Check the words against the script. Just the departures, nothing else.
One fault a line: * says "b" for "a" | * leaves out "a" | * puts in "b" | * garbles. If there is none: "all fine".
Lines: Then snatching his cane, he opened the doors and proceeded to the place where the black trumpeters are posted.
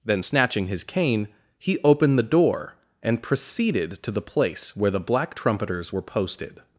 * says "door" for "doors"
* says "were" for "are"